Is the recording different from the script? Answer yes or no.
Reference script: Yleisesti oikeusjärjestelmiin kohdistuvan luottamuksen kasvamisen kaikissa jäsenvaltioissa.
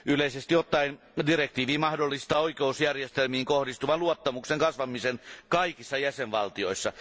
yes